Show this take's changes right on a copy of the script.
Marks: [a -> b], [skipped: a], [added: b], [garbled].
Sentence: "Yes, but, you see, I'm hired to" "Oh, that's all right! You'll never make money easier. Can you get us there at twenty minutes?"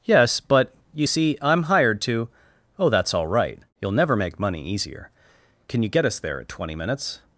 "Yes, but, you see, I'm hired to" "Oh, that's all right! You'll never make money easier. Can you get us there at twenty minutes?"